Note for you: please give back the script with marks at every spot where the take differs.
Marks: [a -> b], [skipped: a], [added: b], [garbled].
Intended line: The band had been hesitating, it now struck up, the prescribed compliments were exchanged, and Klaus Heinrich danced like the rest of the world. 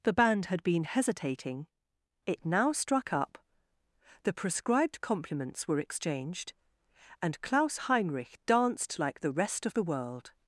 The band had been hesitating, it now struck up, the prescribed compliments were exchanged, and Klaus Heinrich danced like the rest of the world.